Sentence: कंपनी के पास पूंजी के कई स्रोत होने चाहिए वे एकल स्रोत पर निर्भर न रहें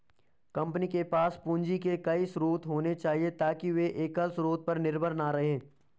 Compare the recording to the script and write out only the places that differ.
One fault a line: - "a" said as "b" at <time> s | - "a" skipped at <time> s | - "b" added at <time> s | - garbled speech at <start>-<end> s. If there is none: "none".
- "ताकि" added at 3.4 s